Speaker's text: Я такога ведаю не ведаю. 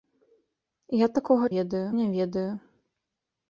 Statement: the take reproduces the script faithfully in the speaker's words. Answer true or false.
true